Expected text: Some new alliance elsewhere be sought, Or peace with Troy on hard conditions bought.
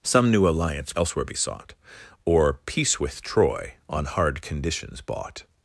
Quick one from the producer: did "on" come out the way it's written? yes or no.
yes